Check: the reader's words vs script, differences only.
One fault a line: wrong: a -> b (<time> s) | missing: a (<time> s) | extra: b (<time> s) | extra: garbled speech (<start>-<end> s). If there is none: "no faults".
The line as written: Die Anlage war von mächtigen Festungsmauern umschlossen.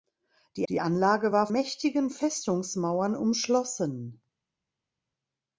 extra: die (0.7 s)
missing: von (1.5 s)